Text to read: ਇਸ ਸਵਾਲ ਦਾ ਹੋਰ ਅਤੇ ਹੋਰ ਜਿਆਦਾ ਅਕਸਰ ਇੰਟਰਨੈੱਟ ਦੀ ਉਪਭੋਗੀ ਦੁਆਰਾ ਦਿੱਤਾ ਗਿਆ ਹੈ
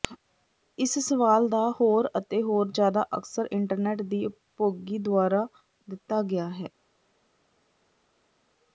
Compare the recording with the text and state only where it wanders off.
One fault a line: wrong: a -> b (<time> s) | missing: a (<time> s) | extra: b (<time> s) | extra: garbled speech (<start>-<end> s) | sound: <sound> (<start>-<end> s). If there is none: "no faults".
no faults